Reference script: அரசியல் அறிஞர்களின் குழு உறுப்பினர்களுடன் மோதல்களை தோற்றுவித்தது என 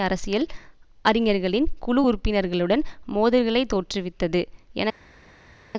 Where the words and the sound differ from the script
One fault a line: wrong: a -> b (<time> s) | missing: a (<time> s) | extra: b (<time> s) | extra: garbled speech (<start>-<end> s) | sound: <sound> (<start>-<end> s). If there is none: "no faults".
no faults